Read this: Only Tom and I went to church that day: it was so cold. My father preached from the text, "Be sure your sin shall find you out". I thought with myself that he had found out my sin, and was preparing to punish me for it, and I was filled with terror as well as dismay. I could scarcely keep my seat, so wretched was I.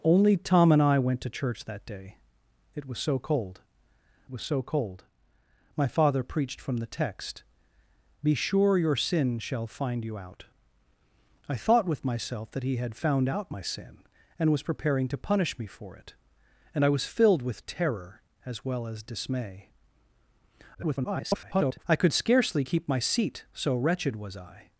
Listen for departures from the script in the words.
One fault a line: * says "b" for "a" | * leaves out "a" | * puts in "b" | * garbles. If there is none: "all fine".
* puts in "was so cold"
* garbles